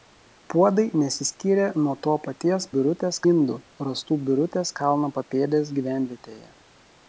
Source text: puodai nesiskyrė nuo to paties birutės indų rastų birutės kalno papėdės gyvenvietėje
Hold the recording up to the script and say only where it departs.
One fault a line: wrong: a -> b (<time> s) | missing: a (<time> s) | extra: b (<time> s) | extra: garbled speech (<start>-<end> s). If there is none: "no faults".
no faults